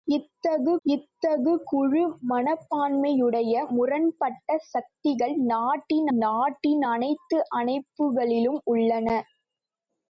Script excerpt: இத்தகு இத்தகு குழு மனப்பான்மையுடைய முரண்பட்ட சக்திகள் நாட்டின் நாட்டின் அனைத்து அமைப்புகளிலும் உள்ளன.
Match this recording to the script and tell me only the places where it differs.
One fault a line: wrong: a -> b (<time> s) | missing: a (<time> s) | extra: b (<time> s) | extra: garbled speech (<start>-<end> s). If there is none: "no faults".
no faults